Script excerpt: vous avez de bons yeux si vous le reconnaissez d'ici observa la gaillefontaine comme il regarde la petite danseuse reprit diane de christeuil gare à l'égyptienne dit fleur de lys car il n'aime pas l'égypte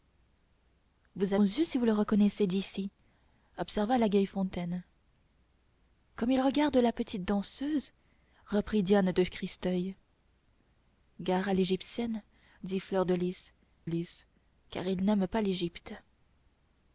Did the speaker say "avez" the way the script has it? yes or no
no